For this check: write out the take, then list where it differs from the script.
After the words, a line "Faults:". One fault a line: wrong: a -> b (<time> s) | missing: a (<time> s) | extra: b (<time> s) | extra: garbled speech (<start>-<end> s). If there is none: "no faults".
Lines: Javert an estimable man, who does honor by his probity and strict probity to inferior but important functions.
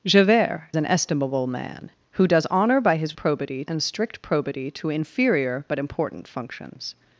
Javert an estimable man, who does honor by his probity and strict probity to inferior but important functions.
Faults:
no faults